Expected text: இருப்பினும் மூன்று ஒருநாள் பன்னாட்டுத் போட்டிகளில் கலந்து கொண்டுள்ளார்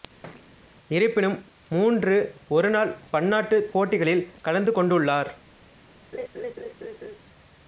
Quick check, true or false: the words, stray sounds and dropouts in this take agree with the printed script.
false